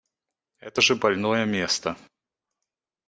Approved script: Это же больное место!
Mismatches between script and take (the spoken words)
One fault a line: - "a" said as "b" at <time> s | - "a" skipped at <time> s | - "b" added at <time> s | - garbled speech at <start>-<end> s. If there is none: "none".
none